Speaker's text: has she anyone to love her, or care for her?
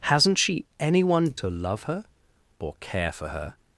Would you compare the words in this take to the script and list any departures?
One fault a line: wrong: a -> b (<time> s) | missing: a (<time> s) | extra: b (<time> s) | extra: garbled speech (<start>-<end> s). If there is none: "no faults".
wrong: has -> hasn't (0.0 s)